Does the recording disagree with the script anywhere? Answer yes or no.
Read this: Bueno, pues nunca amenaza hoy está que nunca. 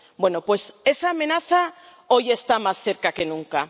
yes